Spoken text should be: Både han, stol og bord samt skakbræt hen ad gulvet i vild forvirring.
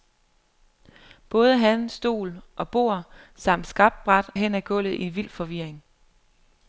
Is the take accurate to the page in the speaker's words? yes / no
yes